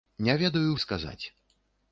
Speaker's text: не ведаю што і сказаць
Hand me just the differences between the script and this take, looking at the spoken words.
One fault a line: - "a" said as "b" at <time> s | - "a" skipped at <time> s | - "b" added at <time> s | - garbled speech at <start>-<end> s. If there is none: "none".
- "што" skipped at 0.7 s